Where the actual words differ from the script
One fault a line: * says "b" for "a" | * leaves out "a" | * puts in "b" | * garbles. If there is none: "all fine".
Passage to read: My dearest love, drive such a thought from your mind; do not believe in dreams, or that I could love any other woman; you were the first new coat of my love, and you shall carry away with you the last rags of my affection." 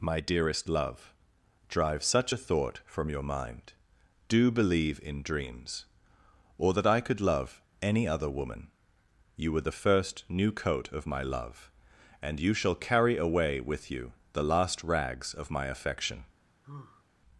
* leaves out "not"